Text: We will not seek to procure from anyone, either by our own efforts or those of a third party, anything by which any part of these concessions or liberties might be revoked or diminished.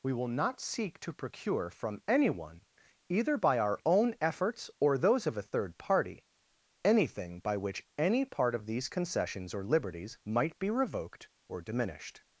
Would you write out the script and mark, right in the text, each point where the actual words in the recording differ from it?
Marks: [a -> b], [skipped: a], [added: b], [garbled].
We will not seek to procure from anyone, either by our own efforts or those of a third party, anything by which any part of these concessions or liberties might be revoked or diminished.